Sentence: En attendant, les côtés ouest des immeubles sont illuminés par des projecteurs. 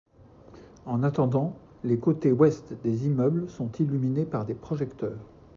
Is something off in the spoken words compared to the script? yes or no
no